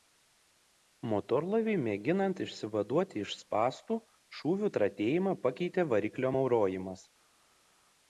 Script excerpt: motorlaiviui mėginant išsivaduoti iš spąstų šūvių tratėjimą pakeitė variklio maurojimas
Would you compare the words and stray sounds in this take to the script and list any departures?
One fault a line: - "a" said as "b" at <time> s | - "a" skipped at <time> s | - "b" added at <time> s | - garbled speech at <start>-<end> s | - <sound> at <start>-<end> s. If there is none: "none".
none